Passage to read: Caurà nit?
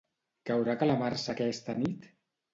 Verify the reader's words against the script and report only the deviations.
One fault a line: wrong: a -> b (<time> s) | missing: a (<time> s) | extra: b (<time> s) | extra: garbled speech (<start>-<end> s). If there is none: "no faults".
extra: calamarsa aquesta (0.8 s)